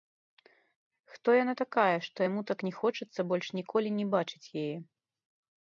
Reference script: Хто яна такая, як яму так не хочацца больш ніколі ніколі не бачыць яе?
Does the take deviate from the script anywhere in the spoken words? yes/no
yes